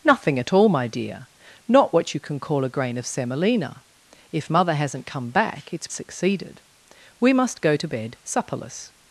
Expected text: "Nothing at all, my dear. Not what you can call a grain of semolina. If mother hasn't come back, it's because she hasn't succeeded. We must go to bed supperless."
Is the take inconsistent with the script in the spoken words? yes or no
yes